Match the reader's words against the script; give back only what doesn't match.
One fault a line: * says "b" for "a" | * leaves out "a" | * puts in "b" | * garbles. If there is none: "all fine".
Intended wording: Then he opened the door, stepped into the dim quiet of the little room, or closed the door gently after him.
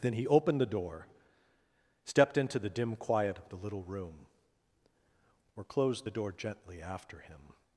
all fine